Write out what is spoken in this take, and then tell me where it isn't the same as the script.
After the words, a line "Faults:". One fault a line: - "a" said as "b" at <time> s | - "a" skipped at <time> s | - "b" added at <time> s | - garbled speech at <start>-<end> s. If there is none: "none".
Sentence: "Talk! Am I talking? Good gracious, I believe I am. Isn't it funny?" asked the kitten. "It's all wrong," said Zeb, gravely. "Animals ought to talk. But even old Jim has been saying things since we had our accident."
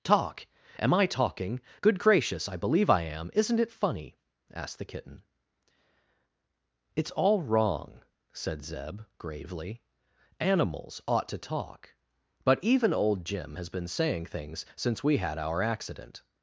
"Talk! Am I talking? Good gracious, I believe I am. Isn't it funny?" asked the kitten. "It's all wrong," said Zeb, gravely. "Animals ought to talk. But even old Jim has been saying things since we had our accident."
Faults:
none